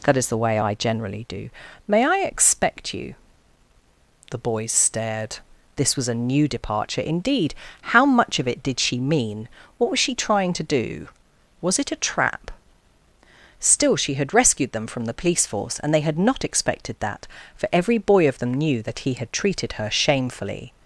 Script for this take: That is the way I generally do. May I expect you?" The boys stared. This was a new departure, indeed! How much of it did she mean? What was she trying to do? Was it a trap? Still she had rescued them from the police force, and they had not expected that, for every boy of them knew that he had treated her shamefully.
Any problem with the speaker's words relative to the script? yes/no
no